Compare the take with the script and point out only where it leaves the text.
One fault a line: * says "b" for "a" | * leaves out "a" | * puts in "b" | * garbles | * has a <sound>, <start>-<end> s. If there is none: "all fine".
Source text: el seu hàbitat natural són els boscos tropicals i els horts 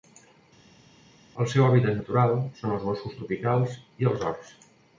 all fine